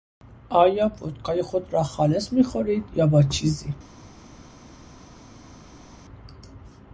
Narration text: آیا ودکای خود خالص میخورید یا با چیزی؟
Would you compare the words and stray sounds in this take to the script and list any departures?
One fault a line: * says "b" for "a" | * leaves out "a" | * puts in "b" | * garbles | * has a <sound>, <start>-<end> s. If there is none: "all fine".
* puts in "را"